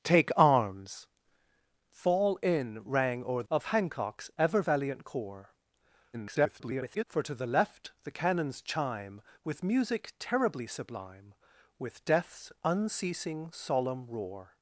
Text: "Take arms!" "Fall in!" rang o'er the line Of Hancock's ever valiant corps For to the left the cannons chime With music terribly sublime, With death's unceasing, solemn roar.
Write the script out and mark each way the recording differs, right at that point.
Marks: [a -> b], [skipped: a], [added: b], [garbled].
"Take arms!" "Fall in!" rang o'er [skipped: the line] Of Hancock's ever valiant corps [garbled] For to the left the cannons chime With music terribly sublime, With death's unceasing, solemn roar.